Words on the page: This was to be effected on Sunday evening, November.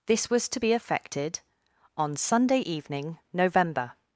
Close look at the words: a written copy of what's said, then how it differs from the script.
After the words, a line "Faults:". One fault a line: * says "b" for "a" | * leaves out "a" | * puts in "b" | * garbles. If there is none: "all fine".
This was to be effected on Sunday evening, November.
Faults:
all fine